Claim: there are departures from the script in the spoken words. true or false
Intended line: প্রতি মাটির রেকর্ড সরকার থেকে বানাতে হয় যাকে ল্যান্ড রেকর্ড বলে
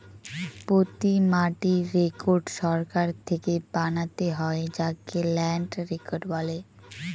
false